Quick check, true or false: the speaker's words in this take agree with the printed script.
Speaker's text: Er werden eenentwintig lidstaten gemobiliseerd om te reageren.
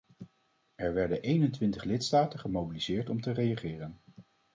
true